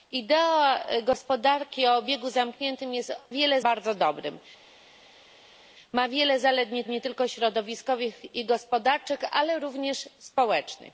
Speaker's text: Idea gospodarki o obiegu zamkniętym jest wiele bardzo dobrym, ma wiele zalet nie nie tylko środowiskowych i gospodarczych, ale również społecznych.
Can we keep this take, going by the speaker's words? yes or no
yes